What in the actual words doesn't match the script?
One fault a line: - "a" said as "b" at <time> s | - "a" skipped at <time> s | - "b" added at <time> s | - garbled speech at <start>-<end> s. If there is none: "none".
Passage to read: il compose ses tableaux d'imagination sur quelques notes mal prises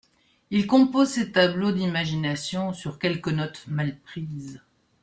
none